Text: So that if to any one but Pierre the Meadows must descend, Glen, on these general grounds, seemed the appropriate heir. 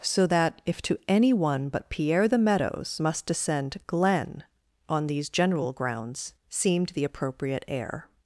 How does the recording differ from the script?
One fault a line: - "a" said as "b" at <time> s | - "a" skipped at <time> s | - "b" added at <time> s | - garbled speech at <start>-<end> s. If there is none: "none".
none